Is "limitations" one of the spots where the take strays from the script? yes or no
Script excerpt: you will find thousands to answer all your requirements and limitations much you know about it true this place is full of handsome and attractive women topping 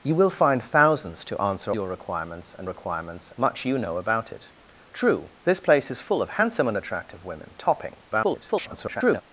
yes